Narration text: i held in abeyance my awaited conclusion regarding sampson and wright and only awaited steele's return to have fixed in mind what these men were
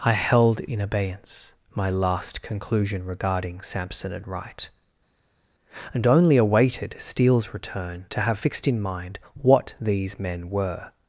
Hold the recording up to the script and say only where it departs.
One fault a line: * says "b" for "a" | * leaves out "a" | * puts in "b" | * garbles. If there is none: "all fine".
* says "last" for "awaited"